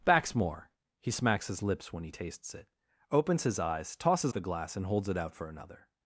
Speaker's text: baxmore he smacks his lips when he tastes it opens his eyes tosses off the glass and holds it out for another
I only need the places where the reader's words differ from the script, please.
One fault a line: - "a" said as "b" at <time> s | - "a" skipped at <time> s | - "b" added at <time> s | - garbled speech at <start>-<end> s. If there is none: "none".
- "off" skipped at 4.3 s